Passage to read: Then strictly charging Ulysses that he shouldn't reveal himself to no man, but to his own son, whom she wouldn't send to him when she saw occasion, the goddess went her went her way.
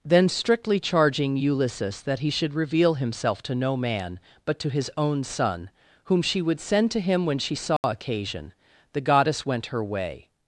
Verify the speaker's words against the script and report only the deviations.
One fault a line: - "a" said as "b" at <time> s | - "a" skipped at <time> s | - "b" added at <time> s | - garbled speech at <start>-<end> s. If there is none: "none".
- "shouldn't" said as "should" at 2.3 s
- "wouldn't" said as "would" at 6.4 s
- "went her" skipped at 9.8 s